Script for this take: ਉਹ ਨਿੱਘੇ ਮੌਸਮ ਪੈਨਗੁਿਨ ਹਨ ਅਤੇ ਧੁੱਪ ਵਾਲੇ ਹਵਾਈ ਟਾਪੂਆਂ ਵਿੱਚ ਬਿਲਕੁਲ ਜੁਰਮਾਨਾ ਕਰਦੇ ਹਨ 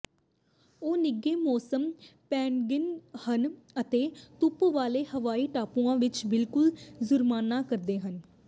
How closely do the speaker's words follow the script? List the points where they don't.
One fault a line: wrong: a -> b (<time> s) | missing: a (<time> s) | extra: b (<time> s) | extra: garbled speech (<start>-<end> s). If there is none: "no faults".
no faults